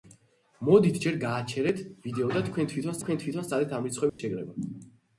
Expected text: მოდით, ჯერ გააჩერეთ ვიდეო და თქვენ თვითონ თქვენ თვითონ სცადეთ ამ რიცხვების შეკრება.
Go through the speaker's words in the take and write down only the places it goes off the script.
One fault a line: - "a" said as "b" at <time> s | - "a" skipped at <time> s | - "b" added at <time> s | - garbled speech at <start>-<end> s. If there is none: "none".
none